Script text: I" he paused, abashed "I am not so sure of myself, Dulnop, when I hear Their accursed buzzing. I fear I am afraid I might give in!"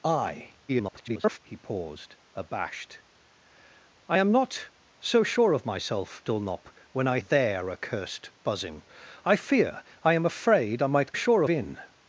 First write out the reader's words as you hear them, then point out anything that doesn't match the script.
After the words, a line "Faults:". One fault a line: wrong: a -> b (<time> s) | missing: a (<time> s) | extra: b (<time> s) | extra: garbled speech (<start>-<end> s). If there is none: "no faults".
I" [garbled] he paused, abashed "I am not so sure of myself, Dulnop, when I Their accursed buzzing. I fear I am afraid I might sure in!"
Faults:
extra: garbled speech (0.7-1.4 s)
missing: hear (7.2 s)
wrong: give -> sure (11.1 s)